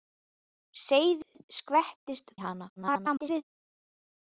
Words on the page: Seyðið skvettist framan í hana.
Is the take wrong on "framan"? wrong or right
wrong